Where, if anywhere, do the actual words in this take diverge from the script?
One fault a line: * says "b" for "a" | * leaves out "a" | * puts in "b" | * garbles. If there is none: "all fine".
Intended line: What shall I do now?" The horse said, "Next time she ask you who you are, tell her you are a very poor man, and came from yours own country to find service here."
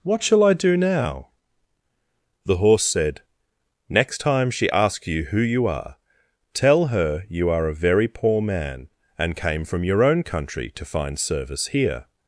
* says "asks" for "ask"
* says "your" for "yours"